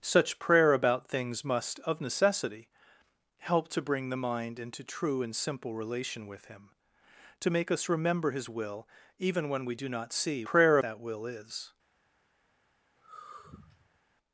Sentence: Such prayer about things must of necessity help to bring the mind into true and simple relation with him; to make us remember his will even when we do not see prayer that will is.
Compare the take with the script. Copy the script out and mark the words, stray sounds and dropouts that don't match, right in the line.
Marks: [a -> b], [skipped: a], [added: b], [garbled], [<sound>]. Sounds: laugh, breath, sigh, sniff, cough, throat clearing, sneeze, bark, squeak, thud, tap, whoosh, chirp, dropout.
Such prayer about things must of necessity help to bring the mind into true and simple relation with him; to make us remember his will even when we do not see prayer that will is. [sigh]